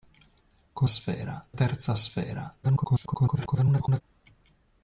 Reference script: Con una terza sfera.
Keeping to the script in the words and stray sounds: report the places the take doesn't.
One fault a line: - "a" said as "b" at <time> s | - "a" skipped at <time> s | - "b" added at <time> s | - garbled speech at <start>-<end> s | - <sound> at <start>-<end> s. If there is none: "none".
- "una" said as "sfera" at 0.9 s
- garbled speech at 2.6-4.0 s